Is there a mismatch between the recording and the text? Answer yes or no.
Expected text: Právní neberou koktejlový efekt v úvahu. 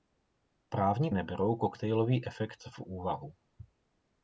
no